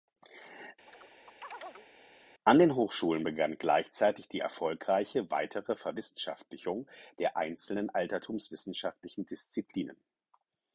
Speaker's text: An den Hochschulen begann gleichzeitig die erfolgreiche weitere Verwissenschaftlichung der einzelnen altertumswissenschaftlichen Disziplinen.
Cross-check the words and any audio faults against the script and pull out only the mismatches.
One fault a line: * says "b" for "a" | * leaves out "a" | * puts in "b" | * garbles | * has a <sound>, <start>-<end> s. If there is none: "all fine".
* has a chirp, 0.9-1.9 s